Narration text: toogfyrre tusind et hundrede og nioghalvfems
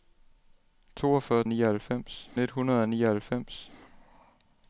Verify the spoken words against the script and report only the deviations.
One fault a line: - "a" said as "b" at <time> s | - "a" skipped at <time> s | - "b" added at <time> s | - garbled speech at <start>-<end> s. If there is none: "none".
- "tusind" said as "nioghalvfems" at 1.5 s